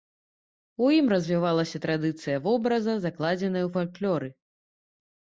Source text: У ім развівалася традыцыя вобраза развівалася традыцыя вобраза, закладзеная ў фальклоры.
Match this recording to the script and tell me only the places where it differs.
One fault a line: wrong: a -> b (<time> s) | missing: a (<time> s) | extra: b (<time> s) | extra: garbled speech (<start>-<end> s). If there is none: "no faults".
missing: развівалася традыцыя вобраза (3.0 s)